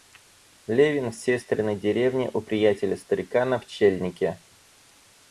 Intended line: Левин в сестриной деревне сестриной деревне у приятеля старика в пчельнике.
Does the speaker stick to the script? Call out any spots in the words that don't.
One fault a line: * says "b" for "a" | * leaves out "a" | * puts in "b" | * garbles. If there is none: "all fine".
* leaves out "сестриной деревне"
* says "на" for "в"